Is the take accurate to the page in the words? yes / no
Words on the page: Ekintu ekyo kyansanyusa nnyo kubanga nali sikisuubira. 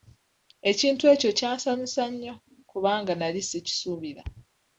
yes